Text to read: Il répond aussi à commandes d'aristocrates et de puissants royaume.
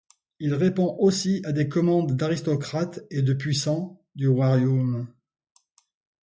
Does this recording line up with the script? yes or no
no